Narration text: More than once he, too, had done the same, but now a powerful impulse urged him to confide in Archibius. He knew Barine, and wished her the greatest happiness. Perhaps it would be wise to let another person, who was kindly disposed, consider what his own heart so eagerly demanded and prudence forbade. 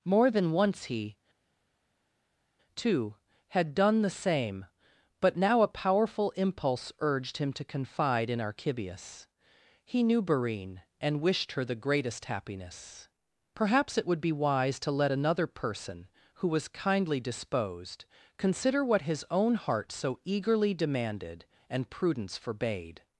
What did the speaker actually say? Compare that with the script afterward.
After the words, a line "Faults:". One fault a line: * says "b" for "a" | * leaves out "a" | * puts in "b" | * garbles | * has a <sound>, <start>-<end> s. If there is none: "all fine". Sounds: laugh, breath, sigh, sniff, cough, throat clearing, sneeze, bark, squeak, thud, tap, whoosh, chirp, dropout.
More than once he, too, had done the same, but now a powerful impulse urged him to confide in Archibius. He knew Barine, and wished her the greatest happiness. Perhaps it would be wise to let another person, who was kindly disposed, consider what his own heart so eagerly demanded and prudence forbade.
Faults:
all fine